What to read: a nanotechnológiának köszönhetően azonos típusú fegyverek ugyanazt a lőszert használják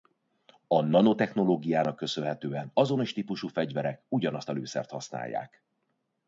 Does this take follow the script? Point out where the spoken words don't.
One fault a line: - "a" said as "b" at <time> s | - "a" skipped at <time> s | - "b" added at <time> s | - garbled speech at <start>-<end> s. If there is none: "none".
none